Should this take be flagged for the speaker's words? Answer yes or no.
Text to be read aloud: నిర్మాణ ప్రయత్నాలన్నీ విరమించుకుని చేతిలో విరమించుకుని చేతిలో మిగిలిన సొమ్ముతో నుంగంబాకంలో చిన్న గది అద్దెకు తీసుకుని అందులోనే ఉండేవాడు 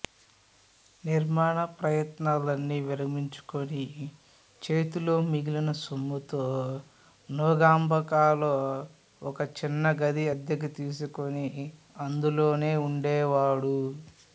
yes